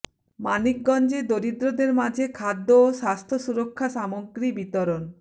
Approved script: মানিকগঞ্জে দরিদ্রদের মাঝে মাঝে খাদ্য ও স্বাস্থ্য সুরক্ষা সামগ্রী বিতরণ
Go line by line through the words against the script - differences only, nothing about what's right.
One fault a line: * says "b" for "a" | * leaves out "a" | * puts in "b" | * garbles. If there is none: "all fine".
* leaves out "মাঝে"